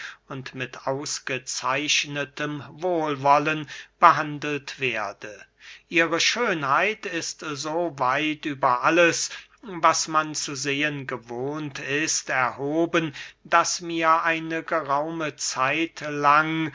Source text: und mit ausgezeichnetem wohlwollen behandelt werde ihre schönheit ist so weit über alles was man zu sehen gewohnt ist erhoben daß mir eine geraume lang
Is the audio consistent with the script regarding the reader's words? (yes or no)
no